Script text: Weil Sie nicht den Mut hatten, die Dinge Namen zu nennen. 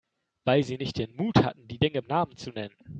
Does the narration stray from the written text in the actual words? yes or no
no